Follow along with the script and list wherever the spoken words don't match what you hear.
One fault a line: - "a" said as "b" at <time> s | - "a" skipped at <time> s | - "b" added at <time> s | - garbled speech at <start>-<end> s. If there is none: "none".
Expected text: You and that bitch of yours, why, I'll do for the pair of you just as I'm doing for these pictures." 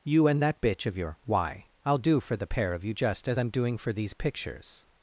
- "yours" said as "your" at 1.0 s